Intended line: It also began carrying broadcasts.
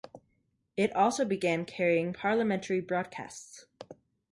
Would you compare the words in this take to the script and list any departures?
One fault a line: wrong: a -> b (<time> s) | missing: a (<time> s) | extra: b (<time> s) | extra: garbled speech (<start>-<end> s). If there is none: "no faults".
extra: parliamentary (2.1 s)